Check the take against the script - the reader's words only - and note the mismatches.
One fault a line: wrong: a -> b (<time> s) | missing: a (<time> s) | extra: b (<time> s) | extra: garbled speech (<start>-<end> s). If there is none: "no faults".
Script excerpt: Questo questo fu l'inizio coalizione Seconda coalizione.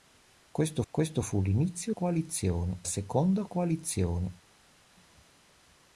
no faults